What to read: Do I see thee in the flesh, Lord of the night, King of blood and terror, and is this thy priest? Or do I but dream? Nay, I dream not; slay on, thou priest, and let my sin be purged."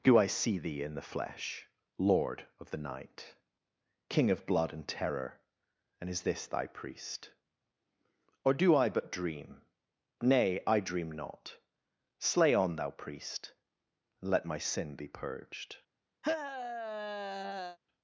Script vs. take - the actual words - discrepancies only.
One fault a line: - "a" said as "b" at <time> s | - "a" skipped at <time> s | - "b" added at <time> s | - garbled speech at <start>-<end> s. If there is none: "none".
none